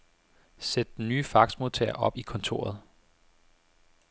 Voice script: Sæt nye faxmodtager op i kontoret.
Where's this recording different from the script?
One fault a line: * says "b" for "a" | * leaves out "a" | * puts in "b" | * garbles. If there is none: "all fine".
* puts in "den"